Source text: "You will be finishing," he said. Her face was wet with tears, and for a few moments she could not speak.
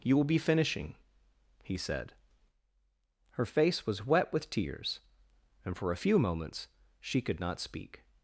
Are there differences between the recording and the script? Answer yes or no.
no